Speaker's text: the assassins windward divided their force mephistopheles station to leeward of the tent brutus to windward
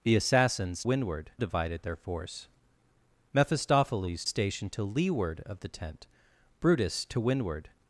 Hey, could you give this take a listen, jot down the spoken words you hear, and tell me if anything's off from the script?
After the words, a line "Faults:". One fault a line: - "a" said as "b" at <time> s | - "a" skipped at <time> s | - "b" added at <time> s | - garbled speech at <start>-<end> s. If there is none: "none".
the assassins windward divided their force mephistopheles station to leeward of the tent brutus to windward
Faults:
none